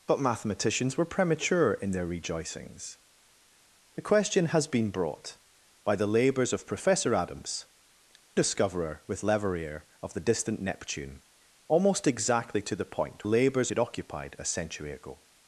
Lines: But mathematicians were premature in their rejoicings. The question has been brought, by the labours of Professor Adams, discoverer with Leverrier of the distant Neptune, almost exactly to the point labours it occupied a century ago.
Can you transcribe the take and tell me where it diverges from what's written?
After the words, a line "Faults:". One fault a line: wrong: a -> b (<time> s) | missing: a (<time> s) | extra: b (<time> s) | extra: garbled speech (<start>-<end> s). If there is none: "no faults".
But mathematicians were premature in their rejoicings. The question has been brought, by the labours of Professor Adams, discoverer with Leverrier of the distant Neptune, almost exactly to the point labours it occupied a century ago.
Faults:
no faults